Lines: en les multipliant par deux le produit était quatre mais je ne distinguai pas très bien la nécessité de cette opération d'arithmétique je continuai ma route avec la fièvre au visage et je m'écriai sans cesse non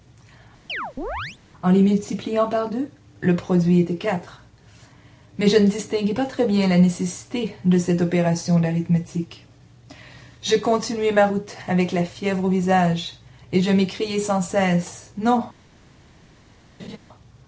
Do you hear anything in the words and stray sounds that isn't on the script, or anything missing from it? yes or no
yes